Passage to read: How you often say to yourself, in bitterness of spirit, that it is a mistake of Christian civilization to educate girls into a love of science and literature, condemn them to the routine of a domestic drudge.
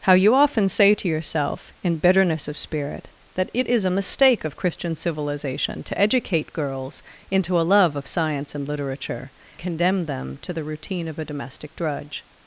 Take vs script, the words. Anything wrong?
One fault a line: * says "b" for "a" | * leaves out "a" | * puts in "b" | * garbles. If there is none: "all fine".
all fine